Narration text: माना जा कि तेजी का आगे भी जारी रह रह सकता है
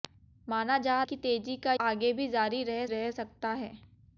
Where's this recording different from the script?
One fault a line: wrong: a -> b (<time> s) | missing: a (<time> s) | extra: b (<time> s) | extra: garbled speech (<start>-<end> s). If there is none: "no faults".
no faults